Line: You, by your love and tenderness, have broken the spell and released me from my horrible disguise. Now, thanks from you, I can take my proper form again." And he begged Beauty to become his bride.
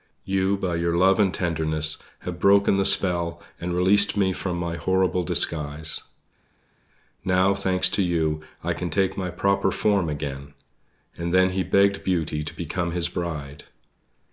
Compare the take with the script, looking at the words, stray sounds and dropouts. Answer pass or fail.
fail